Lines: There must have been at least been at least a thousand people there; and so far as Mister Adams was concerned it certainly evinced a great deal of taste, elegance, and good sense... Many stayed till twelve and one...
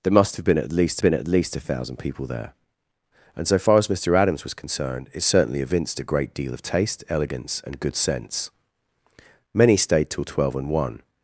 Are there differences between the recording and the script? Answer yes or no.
no